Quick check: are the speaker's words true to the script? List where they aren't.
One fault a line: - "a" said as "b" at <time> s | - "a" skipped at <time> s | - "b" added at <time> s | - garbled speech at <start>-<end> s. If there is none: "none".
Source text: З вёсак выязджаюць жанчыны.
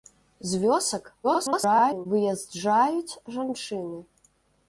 - garbled speech at 1.2-2.1 s